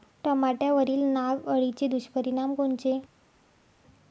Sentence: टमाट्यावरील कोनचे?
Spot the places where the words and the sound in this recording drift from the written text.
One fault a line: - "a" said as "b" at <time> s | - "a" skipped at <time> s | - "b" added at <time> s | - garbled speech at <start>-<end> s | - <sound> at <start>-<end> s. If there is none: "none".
- "नाग अळीचे दुष्परिणाम" added at 1.0 s